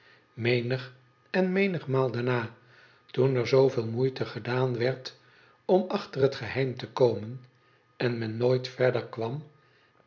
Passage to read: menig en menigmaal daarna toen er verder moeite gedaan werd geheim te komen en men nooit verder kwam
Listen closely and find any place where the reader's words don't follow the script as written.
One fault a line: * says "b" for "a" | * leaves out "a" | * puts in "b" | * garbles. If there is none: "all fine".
* says "zooveel" for "verder"
* puts in "om achter het"